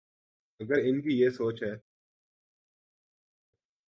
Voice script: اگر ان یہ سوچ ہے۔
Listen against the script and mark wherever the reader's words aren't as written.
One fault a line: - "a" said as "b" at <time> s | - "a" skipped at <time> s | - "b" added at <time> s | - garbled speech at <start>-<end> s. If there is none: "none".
- "کی" added at 1.0 s